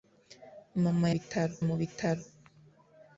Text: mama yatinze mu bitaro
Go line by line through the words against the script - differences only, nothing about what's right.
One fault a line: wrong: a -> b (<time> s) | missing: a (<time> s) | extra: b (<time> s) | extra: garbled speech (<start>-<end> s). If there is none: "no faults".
wrong: yatinze -> bitaro (1.1 s)